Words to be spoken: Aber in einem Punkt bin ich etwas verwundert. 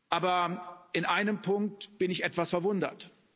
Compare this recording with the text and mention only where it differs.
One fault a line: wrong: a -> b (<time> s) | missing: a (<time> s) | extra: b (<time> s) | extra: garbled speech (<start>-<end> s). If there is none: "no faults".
no faults